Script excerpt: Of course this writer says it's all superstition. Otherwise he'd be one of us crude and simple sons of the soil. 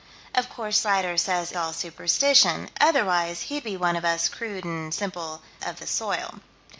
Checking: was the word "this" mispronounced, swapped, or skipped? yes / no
yes